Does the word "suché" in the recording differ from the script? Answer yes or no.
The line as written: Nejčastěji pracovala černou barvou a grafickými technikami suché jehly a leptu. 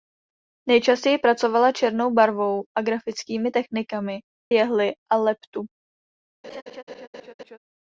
yes